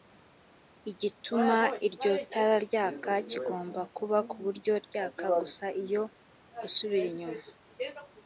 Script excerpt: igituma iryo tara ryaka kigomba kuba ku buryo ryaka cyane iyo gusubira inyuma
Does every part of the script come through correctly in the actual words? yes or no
no